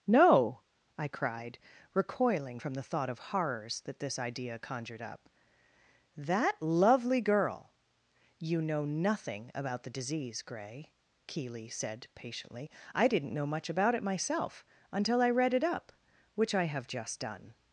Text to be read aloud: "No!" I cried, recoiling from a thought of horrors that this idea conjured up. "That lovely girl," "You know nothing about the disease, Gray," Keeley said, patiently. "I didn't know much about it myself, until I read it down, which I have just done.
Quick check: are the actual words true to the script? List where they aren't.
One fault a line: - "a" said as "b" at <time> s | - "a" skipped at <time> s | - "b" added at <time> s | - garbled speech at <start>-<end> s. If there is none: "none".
- "a" said as "the" at 2.7 s
- "down" said as "up" at 15.6 s